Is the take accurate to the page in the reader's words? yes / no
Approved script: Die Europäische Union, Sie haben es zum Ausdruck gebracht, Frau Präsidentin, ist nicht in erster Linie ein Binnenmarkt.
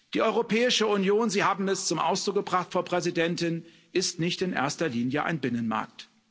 yes